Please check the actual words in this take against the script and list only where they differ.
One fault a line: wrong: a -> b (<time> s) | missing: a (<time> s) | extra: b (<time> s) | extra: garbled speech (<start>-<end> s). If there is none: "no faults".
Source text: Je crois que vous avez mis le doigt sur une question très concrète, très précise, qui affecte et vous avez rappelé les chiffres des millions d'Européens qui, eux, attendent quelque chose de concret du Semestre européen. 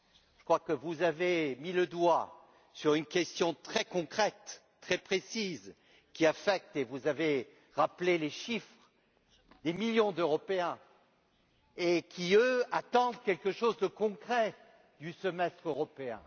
no faults